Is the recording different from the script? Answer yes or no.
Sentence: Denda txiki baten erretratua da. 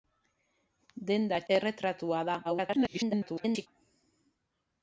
yes